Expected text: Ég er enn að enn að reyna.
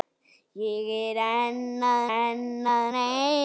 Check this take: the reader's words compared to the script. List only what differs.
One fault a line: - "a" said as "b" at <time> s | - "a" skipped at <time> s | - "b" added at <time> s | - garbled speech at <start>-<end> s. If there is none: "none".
none